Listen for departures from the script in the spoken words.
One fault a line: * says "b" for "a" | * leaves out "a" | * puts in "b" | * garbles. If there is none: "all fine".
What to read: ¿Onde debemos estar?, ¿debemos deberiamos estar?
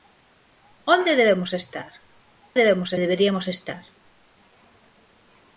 all fine